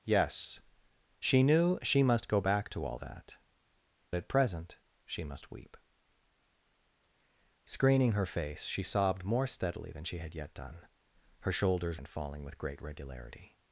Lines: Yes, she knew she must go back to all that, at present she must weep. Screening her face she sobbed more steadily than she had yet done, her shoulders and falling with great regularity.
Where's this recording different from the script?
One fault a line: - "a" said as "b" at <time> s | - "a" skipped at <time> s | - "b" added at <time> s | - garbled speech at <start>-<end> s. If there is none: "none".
none